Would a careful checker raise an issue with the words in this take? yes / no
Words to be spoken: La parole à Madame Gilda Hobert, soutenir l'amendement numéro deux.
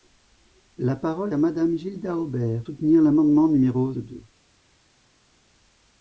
no